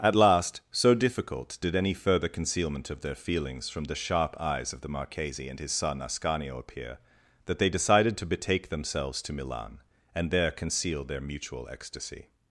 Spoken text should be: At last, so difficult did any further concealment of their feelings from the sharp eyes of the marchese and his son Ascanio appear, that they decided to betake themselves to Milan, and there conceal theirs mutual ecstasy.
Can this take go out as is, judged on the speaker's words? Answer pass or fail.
fail